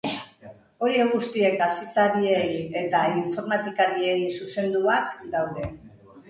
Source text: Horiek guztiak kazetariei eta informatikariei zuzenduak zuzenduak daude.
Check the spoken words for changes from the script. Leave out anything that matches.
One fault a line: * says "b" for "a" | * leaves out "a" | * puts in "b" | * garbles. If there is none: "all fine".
* leaves out "zuzenduak"